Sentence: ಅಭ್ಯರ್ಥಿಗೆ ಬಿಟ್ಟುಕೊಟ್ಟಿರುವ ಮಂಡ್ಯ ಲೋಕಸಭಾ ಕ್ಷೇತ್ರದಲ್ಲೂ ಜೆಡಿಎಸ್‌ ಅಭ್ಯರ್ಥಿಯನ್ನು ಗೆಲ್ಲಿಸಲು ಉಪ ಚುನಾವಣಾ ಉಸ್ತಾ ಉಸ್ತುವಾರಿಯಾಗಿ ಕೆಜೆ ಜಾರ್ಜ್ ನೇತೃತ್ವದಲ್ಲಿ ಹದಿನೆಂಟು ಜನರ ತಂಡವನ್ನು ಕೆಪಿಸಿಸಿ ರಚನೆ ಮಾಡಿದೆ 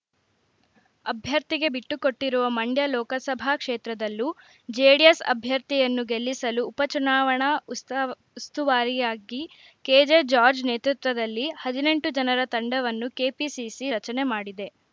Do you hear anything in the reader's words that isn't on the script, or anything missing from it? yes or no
no